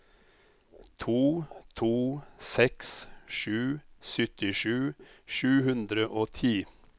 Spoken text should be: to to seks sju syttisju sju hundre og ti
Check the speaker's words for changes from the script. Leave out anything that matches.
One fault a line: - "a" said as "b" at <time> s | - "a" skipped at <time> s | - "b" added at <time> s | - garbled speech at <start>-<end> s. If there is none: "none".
none